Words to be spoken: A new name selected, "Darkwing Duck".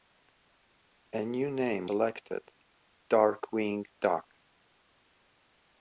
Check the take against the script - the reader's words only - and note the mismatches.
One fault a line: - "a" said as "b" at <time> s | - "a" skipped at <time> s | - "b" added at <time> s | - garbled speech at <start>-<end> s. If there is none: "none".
none